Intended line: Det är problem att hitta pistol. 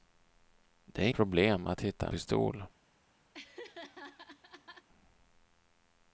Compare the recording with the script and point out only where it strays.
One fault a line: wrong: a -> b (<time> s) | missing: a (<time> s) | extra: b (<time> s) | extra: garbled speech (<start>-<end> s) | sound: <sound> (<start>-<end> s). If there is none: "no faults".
sound: laugh (3.3-4.9 s)